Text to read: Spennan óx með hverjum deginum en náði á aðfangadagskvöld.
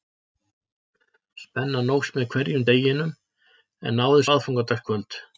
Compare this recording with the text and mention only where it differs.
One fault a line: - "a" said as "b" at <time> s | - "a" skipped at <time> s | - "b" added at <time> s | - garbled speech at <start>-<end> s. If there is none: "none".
none